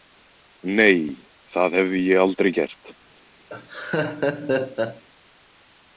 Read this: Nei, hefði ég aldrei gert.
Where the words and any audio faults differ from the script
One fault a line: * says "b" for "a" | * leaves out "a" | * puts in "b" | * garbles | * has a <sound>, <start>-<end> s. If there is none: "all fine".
* puts in "það"
* has a laugh, 3.5-5.0 s